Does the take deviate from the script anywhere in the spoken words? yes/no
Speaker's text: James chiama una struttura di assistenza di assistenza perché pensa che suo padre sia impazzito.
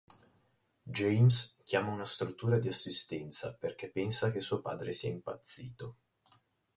yes